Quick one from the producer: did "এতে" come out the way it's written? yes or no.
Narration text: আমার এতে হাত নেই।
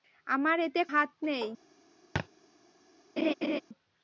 yes